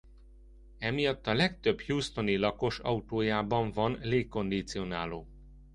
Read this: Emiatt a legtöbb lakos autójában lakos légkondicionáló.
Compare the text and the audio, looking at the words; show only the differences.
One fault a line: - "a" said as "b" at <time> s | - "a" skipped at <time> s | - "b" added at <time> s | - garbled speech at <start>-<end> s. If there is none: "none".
- "houstoni" added at 1.8 s
- "lakos" said as "van" at 3.7 s